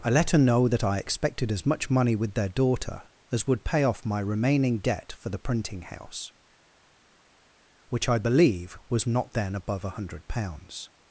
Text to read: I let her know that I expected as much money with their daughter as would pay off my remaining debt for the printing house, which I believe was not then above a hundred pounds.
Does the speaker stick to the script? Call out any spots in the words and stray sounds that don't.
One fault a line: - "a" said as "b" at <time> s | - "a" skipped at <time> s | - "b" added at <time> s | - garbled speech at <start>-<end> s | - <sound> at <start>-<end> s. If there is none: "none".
none